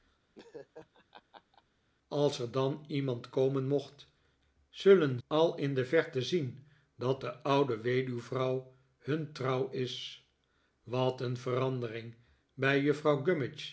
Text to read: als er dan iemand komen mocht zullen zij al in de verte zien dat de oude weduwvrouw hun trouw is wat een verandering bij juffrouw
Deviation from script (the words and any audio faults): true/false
true